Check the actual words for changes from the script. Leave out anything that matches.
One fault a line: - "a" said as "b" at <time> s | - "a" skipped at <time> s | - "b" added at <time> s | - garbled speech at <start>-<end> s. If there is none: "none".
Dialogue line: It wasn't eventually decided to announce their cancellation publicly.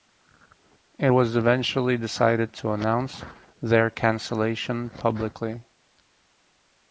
- "wasn't" said as "was" at 1.1 s